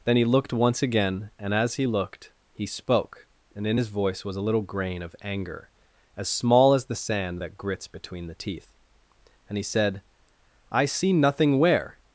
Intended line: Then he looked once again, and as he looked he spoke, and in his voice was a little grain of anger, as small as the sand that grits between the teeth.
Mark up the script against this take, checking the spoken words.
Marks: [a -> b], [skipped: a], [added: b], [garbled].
Then he looked once again, and as he looked he spoke, and in his voice was a little grain of anger, as small as the sand that grits between the teeth. [added: And he said I see nothing where]